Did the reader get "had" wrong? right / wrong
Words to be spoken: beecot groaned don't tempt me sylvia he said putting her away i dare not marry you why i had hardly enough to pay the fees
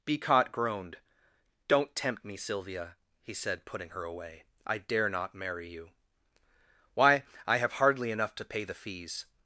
wrong